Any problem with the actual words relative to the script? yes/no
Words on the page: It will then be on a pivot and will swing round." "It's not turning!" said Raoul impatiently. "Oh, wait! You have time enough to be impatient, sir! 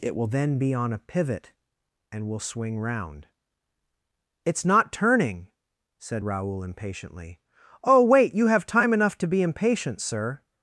no